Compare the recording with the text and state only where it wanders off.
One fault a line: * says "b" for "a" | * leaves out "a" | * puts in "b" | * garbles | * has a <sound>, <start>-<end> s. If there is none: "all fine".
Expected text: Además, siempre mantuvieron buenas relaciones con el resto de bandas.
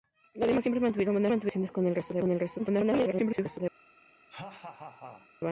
* garbles
* has a laugh, 4.2-5.3 s